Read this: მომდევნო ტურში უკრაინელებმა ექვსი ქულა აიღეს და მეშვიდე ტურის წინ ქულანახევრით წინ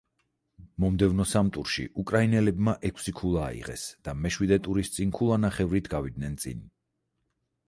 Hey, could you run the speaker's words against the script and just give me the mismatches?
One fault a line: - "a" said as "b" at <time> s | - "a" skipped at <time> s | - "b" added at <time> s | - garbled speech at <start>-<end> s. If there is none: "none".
- "სამ" added at 1.3 s
- "გავიდნენ" added at 5.9 s